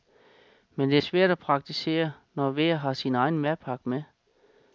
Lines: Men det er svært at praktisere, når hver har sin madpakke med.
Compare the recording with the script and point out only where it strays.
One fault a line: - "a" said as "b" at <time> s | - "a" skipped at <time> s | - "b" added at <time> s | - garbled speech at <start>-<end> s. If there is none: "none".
- "egen" added at 3.1 s